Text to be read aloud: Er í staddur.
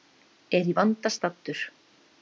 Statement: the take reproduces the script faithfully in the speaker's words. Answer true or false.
false